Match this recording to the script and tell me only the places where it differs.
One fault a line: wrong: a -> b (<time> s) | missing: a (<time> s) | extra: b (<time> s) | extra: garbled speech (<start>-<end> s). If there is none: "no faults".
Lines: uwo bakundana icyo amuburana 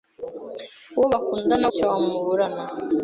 no faults